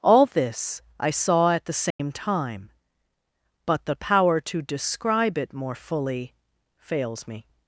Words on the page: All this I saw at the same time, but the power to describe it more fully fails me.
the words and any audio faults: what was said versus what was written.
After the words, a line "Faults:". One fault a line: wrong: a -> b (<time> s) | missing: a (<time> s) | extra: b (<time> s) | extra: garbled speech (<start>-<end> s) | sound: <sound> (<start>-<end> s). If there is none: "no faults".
All this I saw at the same time, but the power to describe it more fully fails me.
Faults:
sound: dropout (1.9-2.0 s)